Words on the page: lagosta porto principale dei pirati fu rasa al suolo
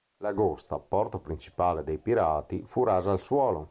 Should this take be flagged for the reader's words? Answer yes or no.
no